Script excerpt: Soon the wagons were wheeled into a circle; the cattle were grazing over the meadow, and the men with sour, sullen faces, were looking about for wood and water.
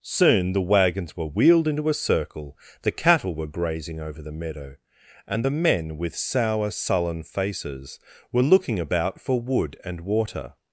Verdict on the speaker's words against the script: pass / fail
pass